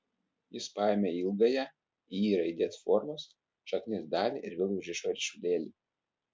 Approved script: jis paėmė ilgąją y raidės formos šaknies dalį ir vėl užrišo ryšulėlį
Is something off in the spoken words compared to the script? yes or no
no